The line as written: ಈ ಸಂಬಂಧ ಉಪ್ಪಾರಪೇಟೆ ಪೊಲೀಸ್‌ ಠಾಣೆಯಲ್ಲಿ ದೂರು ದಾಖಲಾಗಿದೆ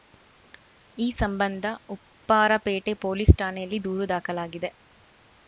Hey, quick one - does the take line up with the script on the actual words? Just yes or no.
yes